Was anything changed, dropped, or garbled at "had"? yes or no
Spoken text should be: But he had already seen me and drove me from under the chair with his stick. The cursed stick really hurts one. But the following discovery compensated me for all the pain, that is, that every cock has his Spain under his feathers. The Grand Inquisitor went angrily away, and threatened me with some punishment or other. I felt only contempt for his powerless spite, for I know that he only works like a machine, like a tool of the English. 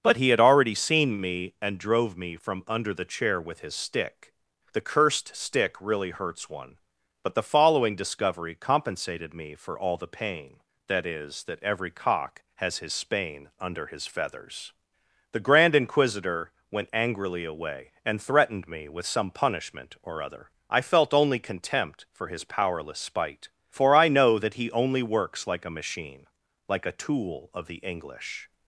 no